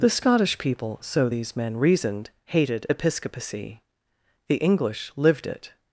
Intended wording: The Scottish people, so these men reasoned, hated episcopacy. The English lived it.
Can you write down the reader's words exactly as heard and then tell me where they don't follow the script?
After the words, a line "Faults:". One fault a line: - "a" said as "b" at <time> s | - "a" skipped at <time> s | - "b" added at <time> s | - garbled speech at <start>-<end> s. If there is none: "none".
The Scottish people, so these men reasoned, hated episcopacy. The English lived it.
Faults:
none